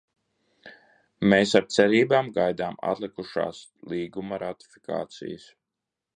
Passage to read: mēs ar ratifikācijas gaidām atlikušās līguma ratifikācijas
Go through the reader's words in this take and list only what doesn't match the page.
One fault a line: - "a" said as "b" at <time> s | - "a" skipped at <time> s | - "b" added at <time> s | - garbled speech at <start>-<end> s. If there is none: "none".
- "ratifikācijas" said as "cerībām" at 1.8 s